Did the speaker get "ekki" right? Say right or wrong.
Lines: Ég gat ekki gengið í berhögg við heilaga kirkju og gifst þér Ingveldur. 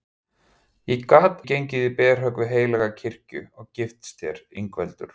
wrong